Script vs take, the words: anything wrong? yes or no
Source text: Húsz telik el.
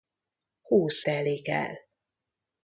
no